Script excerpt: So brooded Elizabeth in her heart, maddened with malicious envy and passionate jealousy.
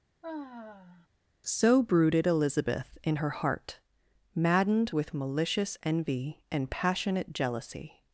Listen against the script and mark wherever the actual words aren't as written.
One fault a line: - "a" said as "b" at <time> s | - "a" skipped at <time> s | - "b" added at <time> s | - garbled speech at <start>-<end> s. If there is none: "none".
none